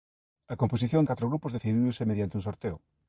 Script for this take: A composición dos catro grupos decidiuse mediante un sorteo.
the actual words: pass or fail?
fail